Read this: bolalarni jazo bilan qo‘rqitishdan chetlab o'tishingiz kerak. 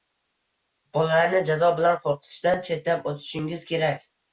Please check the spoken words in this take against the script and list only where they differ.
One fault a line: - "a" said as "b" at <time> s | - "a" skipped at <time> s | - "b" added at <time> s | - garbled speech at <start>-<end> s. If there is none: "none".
none